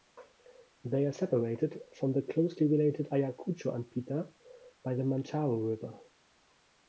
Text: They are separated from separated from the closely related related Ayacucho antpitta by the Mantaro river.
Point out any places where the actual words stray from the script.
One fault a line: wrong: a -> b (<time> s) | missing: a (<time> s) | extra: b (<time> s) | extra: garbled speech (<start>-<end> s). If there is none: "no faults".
missing: separated from (2.1 s)
missing: related (3.1 s)